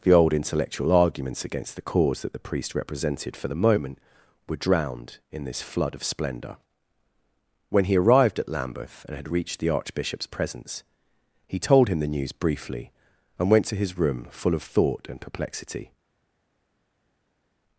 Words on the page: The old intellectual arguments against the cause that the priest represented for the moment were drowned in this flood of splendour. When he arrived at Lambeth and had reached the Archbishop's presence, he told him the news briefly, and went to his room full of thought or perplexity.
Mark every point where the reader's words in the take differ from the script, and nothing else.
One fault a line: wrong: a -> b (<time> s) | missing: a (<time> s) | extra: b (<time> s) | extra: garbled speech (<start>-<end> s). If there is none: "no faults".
wrong: or -> and (15.1 s)